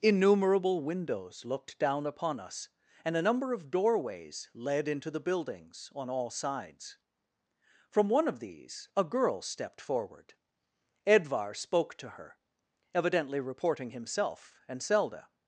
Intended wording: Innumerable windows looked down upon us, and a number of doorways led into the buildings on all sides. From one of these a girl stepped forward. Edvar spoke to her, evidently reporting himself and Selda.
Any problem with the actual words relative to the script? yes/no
no